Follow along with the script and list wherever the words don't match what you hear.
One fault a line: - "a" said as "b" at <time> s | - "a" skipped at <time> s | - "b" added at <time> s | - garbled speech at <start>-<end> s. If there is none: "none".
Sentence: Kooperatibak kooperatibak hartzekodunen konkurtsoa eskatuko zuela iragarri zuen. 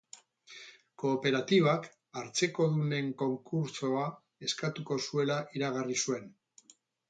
- "kooperatibak" skipped at 1.9 s